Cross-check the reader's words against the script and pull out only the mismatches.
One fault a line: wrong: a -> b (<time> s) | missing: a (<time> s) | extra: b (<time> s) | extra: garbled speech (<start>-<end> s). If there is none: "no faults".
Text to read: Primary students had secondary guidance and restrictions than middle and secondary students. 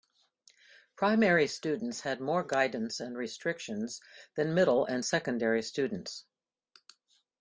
wrong: secondary -> more (2.2 s)